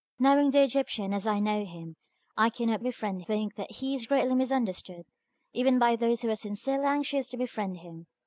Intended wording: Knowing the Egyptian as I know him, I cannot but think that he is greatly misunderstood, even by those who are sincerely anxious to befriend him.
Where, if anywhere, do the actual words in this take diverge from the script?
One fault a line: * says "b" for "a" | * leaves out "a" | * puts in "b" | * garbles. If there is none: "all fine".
* says "befriend" for "but"